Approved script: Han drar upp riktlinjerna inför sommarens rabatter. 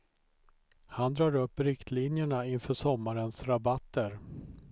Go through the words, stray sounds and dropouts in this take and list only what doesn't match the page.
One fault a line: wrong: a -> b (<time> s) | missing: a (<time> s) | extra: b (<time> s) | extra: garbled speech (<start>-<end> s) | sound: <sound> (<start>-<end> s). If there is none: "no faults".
no faults